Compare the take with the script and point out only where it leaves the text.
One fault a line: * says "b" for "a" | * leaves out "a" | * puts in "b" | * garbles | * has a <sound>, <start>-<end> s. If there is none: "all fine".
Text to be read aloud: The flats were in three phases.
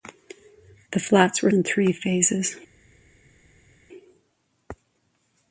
all fine